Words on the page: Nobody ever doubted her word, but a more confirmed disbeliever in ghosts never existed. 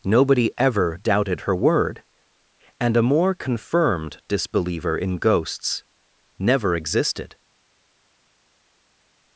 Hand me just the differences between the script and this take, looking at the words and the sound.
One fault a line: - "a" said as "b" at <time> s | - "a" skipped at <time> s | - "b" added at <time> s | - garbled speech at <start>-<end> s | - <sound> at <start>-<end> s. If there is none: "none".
- "but" said as "and" at 2.8 s